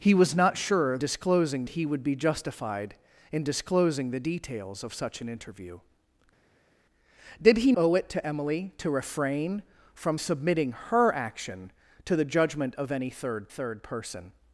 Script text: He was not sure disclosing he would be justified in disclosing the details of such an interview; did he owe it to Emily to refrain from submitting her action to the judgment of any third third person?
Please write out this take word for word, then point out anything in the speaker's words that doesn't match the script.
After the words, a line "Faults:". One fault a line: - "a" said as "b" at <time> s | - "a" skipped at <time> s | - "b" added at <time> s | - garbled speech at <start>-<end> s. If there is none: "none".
He was not sure disclosing he would be justified in disclosing the details of such an interview; did he owe it to Emily to refrain from submitting her action to the judgment of any third third person?
Faults:
none